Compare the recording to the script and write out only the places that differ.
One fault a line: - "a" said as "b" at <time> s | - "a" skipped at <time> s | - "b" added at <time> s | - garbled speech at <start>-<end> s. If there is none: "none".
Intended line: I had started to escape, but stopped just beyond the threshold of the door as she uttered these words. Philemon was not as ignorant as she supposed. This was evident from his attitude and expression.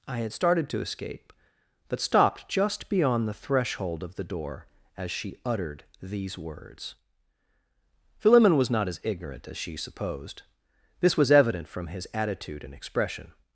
none